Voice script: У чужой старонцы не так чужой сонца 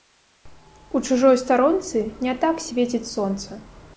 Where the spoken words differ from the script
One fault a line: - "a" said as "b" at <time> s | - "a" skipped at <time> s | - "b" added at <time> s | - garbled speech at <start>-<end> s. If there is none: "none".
- "чужой" said as "свеціць" at 2.7 s